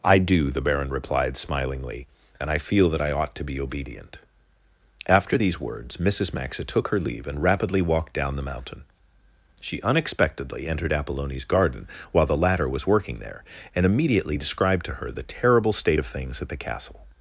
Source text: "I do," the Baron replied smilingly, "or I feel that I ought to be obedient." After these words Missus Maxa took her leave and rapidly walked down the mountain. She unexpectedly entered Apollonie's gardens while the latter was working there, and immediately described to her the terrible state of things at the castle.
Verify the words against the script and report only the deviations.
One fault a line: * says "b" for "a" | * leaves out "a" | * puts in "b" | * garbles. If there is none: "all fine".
* says "and" for "or"
* says "garden" for "gardens"